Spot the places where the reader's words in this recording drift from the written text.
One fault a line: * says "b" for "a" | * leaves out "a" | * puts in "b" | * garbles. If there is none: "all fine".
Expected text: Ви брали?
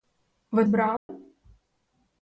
all fine